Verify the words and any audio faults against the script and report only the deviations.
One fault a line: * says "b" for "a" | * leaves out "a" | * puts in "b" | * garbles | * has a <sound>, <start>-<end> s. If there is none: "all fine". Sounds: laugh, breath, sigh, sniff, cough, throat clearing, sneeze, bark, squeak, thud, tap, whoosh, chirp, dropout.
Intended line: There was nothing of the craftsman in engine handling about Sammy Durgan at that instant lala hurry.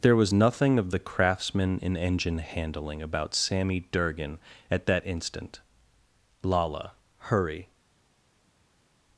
all fine